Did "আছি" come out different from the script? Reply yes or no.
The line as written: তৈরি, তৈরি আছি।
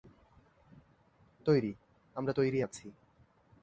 no